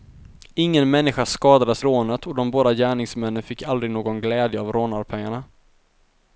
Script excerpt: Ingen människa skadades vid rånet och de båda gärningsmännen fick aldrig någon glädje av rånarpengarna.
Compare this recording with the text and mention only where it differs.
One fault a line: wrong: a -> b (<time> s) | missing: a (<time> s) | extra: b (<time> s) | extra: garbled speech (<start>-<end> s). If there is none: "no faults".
missing: vid (1.8 s)